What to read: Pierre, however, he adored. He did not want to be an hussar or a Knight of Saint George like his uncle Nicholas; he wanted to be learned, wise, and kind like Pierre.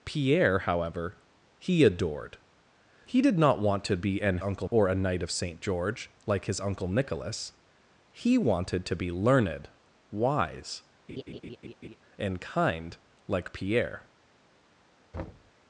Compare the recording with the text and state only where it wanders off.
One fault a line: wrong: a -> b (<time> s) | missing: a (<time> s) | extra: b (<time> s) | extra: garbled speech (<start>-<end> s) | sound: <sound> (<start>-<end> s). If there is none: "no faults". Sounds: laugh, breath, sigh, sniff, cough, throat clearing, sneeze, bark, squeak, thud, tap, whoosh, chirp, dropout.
wrong: hussar -> uncle (4.4 s)
sound: laugh (11.1-12.0 s)
sound: thud (15.1-15.5 s)